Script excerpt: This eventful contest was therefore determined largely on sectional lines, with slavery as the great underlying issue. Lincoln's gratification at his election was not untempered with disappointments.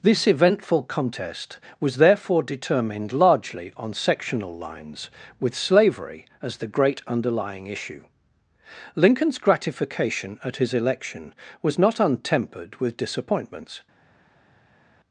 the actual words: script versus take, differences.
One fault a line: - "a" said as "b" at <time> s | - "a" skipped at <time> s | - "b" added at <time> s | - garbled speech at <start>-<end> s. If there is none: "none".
none